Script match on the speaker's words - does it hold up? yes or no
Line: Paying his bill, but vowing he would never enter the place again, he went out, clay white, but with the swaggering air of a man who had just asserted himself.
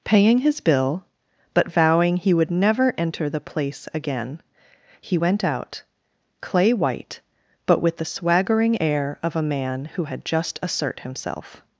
no